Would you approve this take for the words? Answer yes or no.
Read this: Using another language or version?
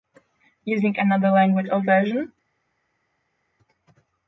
yes